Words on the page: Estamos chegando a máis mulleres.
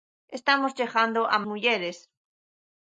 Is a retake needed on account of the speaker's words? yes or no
yes